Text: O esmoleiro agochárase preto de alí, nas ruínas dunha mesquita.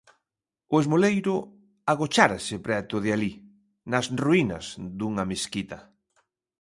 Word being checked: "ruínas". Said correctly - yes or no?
yes